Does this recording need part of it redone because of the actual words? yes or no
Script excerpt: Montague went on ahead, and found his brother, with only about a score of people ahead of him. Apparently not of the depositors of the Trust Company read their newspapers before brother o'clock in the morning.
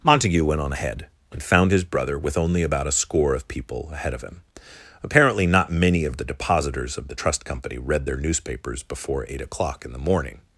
yes